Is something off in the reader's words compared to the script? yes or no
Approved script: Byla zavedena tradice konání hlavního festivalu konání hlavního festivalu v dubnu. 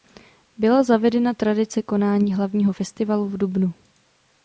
yes